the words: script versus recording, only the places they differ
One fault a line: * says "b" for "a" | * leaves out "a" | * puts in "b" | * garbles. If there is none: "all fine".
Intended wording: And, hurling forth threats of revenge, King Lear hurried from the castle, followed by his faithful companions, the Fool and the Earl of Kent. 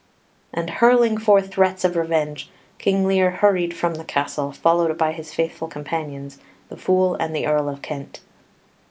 all fine